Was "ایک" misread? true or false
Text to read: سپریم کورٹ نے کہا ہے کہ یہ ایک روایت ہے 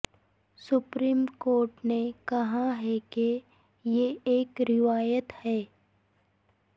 false